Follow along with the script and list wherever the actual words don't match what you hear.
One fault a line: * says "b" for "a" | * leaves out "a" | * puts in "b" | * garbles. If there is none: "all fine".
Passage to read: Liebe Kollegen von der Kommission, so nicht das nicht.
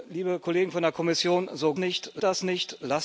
all fine